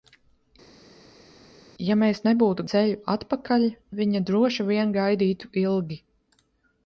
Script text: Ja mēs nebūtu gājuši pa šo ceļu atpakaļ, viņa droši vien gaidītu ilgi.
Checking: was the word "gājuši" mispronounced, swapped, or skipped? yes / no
yes